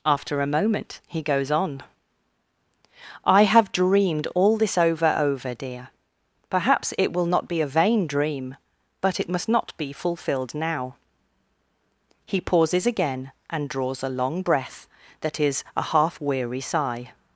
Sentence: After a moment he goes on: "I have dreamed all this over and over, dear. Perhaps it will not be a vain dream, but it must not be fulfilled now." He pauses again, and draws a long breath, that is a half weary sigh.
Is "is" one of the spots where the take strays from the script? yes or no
no